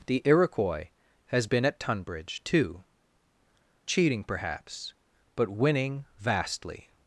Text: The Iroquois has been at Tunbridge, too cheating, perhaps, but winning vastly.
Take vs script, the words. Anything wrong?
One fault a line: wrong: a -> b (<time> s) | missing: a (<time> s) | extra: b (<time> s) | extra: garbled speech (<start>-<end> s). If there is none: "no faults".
no faults